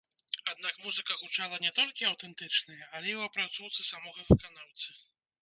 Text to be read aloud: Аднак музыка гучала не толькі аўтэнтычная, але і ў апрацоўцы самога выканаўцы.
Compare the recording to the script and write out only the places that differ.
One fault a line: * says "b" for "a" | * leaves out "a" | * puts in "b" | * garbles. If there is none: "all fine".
all fine